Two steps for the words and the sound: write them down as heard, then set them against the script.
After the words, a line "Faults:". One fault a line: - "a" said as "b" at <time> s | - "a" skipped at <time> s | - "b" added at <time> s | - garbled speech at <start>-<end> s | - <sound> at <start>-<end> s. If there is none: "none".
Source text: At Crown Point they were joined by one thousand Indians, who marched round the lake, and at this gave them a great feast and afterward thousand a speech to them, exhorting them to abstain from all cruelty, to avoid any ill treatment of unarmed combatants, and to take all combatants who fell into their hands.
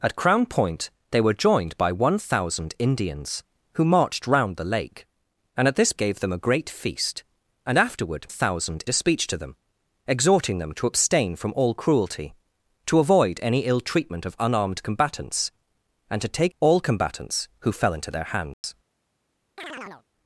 At Crown Point they were joined by one thousand Indians, who marched round the lake, and at this gave them a great feast and afterward thousand a speech to them, exhorting them to abstain from all cruelty, to avoid any ill treatment of unarmed combatants, and to take all combatants who fell into their hands.
Faults:
- dropout at 18.5-18.6 s
- chirp at 19.6-20.0 s